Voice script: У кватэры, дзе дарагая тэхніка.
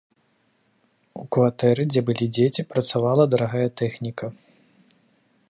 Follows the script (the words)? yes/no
no